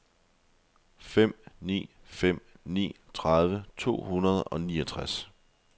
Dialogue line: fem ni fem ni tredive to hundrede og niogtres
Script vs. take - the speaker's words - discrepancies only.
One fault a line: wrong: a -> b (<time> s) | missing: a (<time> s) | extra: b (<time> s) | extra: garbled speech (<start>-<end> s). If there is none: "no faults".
no faults